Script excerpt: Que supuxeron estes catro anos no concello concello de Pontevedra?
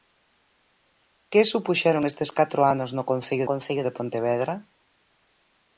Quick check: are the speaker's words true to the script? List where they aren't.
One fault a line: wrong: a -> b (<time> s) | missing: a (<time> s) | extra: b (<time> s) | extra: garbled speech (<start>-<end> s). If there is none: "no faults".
no faults